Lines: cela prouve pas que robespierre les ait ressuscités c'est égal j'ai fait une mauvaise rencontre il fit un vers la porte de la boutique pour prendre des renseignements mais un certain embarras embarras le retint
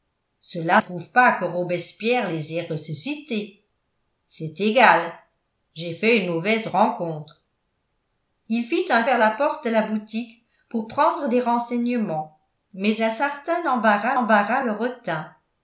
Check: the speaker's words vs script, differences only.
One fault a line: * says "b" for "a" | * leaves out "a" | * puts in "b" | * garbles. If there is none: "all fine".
all fine